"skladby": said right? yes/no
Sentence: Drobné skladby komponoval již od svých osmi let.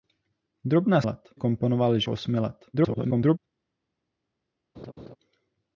no